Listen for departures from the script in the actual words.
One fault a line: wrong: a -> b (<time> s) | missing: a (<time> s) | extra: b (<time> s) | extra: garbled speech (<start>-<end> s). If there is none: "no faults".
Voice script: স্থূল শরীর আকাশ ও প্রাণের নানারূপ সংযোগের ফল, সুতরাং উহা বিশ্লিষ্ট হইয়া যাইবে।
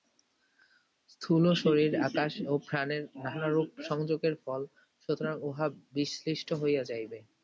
no faults